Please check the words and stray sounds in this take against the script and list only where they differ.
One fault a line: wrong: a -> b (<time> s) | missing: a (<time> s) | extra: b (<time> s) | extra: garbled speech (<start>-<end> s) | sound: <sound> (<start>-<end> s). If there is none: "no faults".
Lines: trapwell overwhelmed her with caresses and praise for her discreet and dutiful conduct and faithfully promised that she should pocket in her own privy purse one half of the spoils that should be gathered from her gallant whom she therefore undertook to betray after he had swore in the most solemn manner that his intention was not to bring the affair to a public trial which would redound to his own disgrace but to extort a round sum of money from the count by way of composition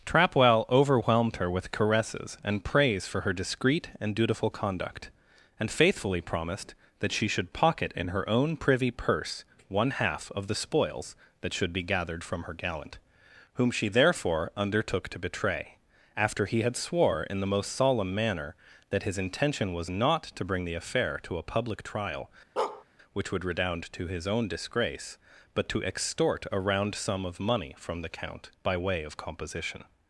sound: bark (22.6-22.8 s)